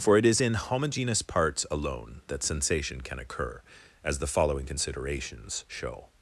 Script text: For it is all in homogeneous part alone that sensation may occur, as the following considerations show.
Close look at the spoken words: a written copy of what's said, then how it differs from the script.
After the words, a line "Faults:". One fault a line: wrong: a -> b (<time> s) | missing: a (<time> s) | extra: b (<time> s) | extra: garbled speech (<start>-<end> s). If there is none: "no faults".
For it is in homogeneous parts alone that sensation can occur, as the following considerations show.
Faults:
missing: all (0.4 s)
wrong: part -> parts (1.2 s)
wrong: may -> can (3.0 s)